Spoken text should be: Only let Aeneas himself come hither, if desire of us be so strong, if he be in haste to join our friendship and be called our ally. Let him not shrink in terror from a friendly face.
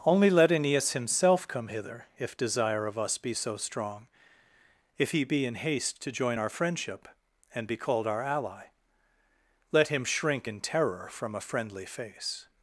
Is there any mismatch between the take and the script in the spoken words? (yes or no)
yes